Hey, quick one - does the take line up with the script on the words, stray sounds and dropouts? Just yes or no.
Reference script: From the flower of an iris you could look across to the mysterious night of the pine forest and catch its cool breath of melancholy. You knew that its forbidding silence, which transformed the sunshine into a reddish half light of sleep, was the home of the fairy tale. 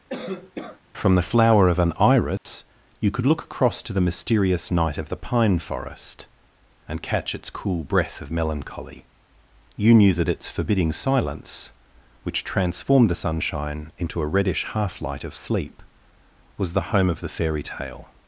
no